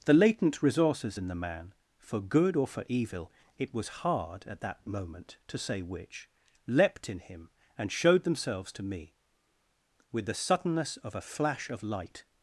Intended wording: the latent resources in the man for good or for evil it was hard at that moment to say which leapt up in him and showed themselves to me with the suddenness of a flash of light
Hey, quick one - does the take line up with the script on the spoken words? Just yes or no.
no